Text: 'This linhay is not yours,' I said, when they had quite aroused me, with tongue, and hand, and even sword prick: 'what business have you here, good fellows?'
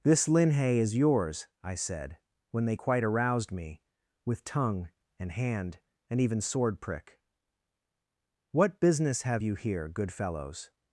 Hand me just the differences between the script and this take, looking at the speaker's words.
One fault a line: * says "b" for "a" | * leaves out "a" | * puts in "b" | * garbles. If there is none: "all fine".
* leaves out "not"
* leaves out "had"